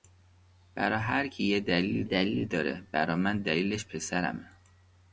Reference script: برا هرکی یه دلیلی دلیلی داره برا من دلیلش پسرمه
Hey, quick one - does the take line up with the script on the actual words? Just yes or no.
yes